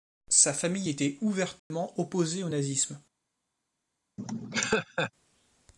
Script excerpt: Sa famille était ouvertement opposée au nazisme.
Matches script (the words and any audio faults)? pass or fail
fail